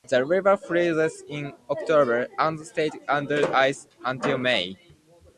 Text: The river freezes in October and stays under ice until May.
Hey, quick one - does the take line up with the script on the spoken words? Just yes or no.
yes